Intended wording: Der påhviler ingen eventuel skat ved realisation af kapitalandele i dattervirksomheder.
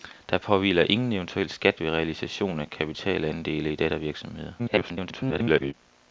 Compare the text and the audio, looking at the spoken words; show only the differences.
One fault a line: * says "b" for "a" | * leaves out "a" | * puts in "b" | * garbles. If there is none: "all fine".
* garbles